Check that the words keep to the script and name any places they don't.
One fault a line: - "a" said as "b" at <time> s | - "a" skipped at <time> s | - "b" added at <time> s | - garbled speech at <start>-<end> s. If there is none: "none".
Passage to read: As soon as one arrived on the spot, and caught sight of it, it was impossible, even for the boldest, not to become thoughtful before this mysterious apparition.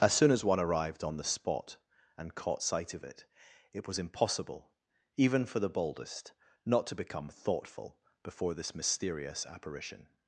none